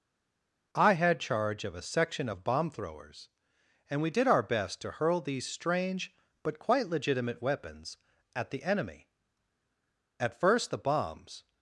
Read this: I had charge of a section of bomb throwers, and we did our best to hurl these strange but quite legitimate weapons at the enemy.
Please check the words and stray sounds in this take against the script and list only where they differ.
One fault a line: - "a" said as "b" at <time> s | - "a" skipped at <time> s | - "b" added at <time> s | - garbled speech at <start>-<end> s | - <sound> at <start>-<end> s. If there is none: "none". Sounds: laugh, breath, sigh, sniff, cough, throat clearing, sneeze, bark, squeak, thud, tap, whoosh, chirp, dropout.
- "At first the bombs" added at 10.2 s